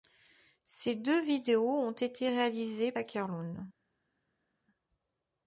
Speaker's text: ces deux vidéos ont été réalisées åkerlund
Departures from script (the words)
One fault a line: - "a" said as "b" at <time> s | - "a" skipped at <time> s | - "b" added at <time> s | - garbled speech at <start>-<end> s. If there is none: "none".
none